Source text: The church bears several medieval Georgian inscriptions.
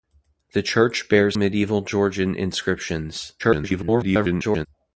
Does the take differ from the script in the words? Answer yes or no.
yes